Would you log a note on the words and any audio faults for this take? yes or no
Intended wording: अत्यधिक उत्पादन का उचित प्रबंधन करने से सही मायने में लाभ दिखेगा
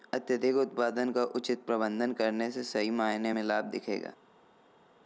no